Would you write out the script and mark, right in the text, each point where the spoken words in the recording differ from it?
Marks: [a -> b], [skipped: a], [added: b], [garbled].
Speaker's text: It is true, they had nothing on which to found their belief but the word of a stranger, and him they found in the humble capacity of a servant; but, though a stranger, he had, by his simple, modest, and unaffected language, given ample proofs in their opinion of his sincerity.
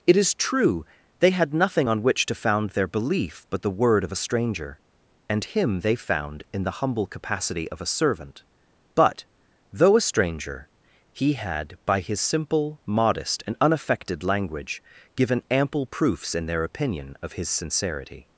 It is true, they had nothing on which to found their belief but the word of a stranger, and him they found in the humble capacity of a servant; but, though a stranger, he had, by his simple, modest, and unaffected language, given ample proofs in their opinion of his sincerity.